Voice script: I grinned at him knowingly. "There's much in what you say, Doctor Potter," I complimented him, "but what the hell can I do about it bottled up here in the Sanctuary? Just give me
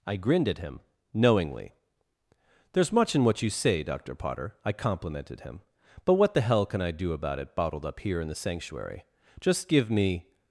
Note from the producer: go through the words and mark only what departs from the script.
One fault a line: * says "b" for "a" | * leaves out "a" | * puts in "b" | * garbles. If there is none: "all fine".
all fine